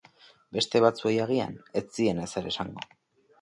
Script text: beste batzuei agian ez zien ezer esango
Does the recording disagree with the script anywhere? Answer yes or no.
no